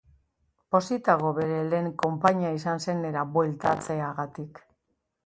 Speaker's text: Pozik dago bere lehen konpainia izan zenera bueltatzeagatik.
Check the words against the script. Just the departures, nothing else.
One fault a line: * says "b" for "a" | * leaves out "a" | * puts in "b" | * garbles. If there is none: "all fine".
all fine